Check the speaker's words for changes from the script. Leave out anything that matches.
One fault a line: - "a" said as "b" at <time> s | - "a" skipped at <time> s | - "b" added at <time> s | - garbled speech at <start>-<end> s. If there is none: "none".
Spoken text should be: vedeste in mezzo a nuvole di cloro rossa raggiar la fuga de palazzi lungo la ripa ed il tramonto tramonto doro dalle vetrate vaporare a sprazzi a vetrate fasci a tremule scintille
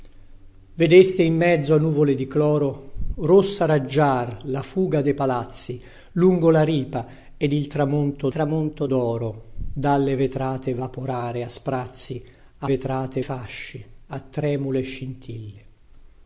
none